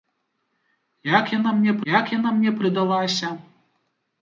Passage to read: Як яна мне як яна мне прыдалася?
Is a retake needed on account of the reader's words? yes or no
no